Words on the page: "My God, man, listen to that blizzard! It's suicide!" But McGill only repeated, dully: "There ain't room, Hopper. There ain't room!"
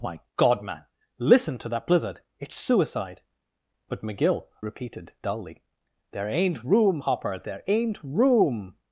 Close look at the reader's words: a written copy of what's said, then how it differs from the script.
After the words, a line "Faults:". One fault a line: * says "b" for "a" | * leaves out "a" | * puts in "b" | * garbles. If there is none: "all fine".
"My God, man, listen to that blizzard! It's suicide!" But McGill repeated, dully: "There ain't room, Hopper. There ain't room!"
Faults:
* leaves out "only"